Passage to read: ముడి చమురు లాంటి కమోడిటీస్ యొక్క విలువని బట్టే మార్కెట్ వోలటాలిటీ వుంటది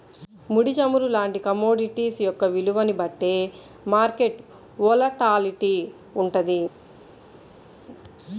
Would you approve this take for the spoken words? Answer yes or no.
yes